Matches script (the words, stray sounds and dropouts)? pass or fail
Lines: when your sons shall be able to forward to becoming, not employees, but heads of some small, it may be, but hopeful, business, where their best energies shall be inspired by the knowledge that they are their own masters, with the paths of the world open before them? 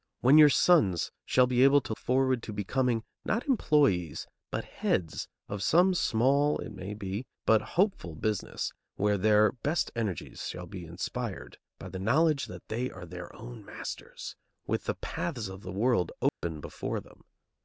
fail